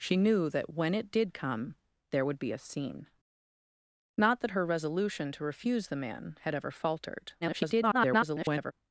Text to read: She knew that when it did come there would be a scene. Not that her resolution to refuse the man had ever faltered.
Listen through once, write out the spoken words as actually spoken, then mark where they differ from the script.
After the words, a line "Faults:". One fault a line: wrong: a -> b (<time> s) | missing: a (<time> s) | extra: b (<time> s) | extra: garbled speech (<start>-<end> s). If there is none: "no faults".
She knew that when it did come there would be a scene. Not that her resolution to refuse the man had ever faltered. [garbled]
Faults:
extra: garbled speech (7.4-8.7 s)